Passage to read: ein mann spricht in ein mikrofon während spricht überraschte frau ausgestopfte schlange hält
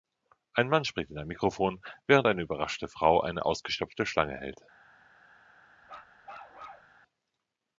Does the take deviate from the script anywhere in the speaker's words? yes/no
yes